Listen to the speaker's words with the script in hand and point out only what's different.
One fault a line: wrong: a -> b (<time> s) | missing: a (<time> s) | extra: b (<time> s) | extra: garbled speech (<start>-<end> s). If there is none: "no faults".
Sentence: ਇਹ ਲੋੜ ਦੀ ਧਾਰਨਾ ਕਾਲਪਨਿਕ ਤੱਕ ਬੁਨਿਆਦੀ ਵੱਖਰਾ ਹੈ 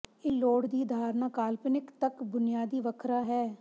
no faults